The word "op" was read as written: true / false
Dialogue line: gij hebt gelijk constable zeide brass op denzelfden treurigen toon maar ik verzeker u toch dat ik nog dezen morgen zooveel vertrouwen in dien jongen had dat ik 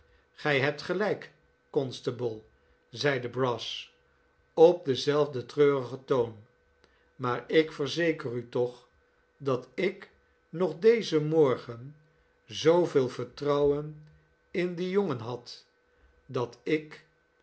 true